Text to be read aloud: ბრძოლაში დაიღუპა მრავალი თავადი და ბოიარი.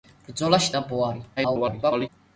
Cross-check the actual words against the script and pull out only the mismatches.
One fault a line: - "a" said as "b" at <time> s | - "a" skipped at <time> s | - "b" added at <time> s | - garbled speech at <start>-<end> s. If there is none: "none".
- "დაიღუპა მრავალი თავადი" skipped at 0.7 s
- garbled speech at 1.4-2.1 s